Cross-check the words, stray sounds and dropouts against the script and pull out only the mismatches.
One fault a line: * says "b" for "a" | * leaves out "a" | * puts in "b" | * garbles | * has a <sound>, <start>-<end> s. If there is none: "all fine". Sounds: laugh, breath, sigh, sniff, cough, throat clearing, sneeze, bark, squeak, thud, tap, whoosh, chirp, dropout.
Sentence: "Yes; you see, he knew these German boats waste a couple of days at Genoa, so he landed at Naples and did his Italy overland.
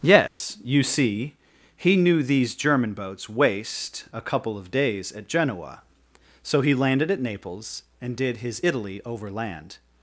* has a dropout, 0.3-0.4 s